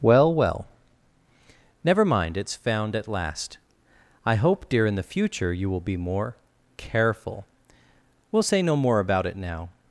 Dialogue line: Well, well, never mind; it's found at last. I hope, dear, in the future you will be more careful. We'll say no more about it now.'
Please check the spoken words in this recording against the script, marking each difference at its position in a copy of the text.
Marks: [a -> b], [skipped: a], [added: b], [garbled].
Well, well, never mind; it's found at last. I hope, dear, in the future you will be more careful. We'll say no more about it now.'